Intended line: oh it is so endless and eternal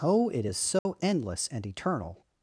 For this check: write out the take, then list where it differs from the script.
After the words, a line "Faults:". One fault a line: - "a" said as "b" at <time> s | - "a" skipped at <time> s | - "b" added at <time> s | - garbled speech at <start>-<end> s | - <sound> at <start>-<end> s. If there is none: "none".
oh it is so endless and eternal
Faults:
- dropout at 0.8-0.9 s